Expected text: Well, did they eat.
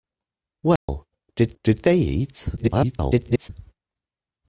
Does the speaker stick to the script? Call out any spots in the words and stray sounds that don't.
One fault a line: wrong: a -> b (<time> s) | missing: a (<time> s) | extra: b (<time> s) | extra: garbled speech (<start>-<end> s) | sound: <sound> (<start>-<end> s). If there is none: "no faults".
sound: dropout (0.8-0.9 s)
extra: did (1.6 s)
extra: garbled speech (2.6-3.5 s)